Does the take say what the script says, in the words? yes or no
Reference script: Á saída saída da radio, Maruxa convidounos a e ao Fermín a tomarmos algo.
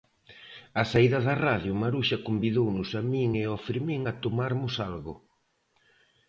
no